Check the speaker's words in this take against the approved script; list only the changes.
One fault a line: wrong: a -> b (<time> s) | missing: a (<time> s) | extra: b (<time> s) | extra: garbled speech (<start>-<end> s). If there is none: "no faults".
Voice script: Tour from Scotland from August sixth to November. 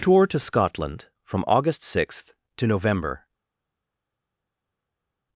wrong: from -> to (0.2 s)